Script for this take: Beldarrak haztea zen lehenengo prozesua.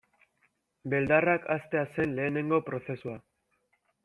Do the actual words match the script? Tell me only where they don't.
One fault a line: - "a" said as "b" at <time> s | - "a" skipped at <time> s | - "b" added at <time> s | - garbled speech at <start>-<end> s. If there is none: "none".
none